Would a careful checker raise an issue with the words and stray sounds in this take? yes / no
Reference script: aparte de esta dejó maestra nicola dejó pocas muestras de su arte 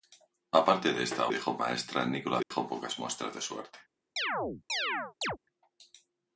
yes